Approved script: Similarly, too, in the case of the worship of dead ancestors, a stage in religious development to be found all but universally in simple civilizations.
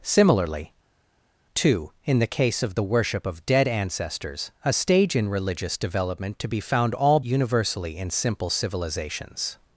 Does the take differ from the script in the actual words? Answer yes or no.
yes